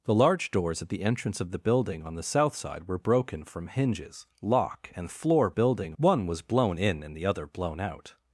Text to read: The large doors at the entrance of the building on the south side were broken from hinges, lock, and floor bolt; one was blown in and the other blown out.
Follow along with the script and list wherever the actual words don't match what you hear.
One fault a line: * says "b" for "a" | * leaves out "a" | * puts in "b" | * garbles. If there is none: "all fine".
* says "building" for "bolt"